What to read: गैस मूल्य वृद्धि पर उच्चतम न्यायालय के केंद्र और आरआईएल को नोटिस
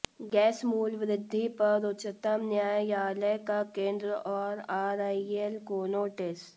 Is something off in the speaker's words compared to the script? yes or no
yes